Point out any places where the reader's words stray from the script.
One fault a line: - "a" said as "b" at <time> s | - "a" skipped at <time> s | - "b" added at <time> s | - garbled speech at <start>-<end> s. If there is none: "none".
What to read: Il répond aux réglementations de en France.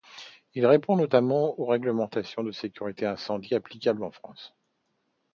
- "notamment" added at 1.0 s
- "sécurité incendie applicables" added at 2.5 s